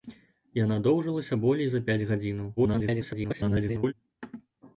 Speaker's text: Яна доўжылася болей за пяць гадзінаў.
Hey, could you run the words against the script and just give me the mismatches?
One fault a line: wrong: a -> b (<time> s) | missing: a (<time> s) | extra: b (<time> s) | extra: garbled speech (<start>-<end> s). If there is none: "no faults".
extra: garbled speech (2.6-3.9 s)